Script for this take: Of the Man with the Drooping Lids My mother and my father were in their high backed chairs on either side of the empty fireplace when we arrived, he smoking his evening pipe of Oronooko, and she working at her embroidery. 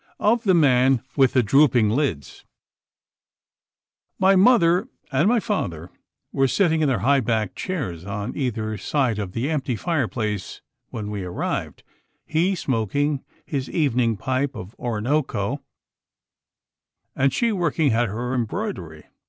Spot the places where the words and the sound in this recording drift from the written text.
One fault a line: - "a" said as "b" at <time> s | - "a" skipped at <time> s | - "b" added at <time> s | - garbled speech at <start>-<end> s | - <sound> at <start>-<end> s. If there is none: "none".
- "sitting" added at 6.5 s